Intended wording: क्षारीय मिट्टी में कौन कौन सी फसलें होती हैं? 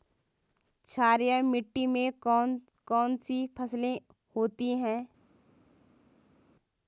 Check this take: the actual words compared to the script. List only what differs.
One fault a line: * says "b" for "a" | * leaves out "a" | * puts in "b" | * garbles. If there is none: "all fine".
all fine